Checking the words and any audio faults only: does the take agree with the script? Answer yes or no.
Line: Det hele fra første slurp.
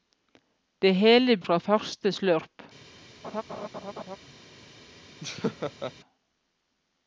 no